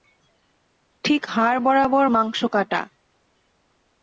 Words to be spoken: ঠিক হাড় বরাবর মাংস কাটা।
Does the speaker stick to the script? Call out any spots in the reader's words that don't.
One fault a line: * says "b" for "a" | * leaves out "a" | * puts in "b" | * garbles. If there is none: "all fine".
all fine